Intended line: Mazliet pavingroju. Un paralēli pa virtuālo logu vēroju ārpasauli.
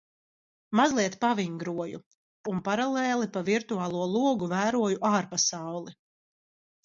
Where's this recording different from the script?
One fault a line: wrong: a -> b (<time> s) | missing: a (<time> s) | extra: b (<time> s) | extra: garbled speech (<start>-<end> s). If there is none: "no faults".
no faults